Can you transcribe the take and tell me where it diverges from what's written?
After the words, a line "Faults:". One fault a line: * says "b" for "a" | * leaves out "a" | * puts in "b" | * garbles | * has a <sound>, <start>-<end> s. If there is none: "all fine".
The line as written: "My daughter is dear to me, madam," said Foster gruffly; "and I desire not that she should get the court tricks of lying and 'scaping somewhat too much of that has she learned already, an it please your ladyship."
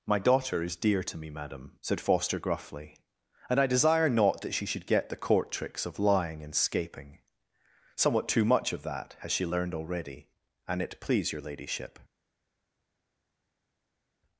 "My daughter is dear to me, madam," said Foster gruffly; "and I desire not that she should get the court tricks of lying and 'scaping somewhat too much of that has she learned already, an it please your ladyship."
Faults:
all fine